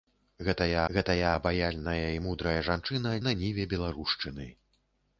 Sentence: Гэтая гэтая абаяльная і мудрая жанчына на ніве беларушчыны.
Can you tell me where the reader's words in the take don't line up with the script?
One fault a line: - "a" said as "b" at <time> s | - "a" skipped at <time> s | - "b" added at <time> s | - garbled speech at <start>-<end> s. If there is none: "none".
none